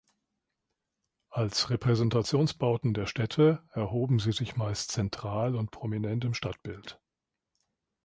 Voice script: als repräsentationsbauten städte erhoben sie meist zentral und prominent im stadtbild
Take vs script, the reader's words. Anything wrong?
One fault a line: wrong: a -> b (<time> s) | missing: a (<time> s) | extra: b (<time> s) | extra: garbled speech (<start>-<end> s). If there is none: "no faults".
extra: der (2.9 s)
extra: sich (4.3 s)